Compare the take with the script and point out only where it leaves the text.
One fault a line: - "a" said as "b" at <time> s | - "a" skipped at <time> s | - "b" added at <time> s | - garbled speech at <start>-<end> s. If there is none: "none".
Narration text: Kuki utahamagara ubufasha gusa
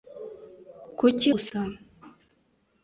- "utahamagara ubufasha" skipped at 1.3 s